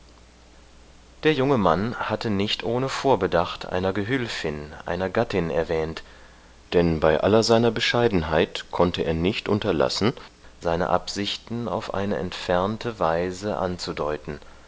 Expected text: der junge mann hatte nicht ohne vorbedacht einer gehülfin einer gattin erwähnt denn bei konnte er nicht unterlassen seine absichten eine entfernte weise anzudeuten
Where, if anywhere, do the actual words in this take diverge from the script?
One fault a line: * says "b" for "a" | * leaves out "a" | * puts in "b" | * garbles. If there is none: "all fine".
* puts in "aller seiner bescheidenheit"
* puts in "auf"